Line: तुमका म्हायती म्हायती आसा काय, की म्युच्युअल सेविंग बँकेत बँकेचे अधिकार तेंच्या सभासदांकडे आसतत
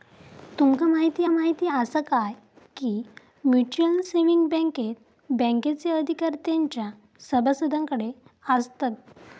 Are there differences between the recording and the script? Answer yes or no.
no